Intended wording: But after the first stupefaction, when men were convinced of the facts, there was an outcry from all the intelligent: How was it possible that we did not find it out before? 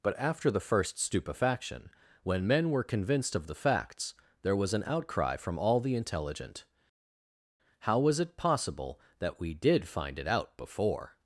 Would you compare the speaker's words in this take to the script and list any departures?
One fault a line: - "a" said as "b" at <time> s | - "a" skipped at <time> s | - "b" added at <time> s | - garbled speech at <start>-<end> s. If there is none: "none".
- "not" skipped at 9.9 s